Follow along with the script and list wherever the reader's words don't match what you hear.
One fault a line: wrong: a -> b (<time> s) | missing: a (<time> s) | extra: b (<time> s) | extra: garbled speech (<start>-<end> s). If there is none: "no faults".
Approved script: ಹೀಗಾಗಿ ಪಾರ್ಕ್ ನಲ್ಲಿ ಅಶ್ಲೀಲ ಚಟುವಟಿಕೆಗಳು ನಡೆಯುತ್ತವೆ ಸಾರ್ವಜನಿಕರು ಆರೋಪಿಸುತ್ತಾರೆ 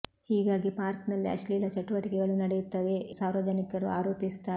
no faults